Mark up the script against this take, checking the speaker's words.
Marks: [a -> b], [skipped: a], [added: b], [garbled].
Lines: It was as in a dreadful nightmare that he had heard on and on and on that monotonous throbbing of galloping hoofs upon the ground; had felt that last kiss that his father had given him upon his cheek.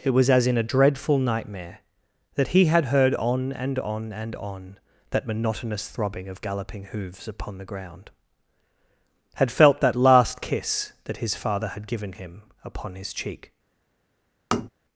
It was as in a dreadful nightmare that he had heard on and on and on that monotonous throbbing of galloping hoofs upon the ground; had felt that last kiss that his father had given him upon his cheek.